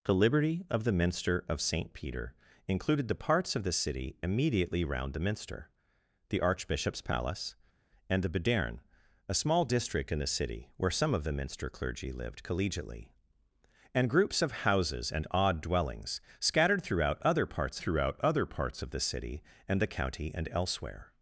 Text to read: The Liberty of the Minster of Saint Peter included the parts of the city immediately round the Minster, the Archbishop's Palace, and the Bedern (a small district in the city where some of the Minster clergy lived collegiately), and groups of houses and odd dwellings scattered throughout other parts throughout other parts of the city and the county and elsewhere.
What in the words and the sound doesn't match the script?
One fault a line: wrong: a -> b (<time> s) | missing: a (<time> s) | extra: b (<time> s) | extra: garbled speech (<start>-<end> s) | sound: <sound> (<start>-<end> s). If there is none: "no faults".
no faults